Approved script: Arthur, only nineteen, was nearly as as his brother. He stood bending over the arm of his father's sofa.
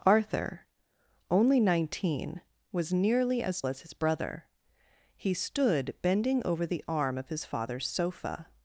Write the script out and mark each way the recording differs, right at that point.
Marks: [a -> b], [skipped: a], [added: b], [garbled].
Arthur, only nineteen, was nearly as as his brother. He stood bending over the arm of his father's sofa.